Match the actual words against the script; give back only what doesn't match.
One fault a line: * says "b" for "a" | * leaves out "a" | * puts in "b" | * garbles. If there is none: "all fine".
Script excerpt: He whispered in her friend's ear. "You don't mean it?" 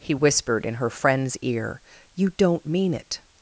all fine